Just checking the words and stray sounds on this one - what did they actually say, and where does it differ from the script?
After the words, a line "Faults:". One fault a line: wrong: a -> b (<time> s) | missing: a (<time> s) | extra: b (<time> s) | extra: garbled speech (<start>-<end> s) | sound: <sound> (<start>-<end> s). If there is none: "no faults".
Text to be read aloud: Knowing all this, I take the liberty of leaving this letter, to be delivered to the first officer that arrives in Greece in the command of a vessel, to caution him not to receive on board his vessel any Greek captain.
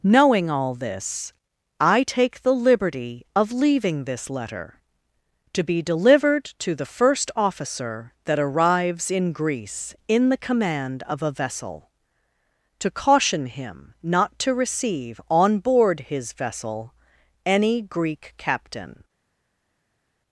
Knowing all this, I take the liberty of leaving this letter, to be delivered to the first officer that arrives in Greece in the command of a vessel, to caution him not to receive on board his vessel any Greek captain.
Faults:
no faults